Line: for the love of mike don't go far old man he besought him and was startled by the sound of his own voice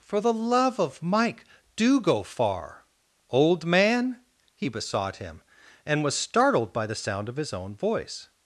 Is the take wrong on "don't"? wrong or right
wrong